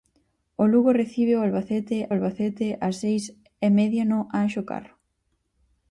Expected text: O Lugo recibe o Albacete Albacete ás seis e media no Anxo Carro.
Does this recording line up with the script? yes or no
yes